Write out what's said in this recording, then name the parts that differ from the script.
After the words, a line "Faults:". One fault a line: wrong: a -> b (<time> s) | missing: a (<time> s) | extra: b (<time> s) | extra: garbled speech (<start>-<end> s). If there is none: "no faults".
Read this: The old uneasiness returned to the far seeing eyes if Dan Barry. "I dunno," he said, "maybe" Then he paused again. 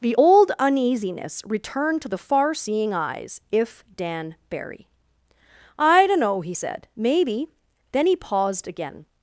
The old uneasiness returned to the far seeing eyes if Dan Barry. "I dunno," he said, "maybe" Then he paused again.
Faults:
no faults